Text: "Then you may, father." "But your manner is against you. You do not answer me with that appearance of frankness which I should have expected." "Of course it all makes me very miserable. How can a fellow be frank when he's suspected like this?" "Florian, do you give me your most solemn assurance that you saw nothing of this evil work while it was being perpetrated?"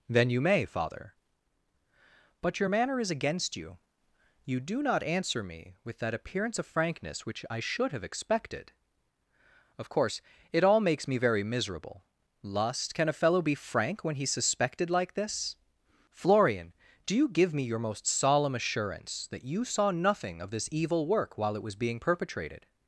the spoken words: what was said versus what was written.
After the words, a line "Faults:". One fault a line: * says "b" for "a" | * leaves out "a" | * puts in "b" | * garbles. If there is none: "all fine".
"Then you may, father." "But your manner is against you. You do not answer me with that appearance of frankness which I should have expected." "Of course it all makes me very miserable. Lust can a fellow be frank when he's suspected like this?" "Florian, do you give me your most solemn assurance that you saw nothing of this evil work while it was being perpetrated?"
Faults:
* says "Lust" for "How"